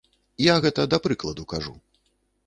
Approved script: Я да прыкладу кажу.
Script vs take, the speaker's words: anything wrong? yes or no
yes